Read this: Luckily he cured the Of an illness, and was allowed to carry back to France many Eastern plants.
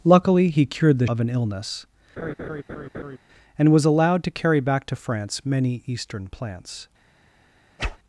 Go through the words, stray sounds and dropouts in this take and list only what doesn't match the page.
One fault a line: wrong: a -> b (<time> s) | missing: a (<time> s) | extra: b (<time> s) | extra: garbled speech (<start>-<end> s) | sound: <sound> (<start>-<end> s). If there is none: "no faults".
sound: laugh (2.2-3.2 s)
sound: whoosh (7.8-8.0 s)